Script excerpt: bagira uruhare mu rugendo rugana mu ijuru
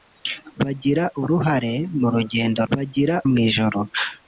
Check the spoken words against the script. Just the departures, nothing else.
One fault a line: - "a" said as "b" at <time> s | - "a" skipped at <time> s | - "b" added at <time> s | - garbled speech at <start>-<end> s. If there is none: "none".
- "rugana" said as "bagira" at 2.7 s